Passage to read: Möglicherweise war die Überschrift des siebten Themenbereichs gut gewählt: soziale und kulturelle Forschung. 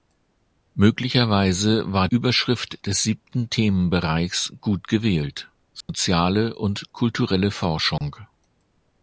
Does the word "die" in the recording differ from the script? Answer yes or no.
yes